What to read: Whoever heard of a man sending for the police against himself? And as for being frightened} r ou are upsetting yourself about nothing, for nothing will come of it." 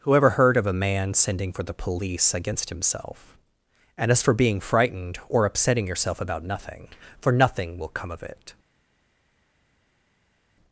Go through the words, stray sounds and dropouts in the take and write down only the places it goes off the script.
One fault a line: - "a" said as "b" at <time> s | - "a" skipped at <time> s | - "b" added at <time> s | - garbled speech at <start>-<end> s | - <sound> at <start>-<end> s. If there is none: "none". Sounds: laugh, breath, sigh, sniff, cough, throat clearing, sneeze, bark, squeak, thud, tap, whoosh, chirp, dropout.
- "r ou are" said as "or" at 5.3 s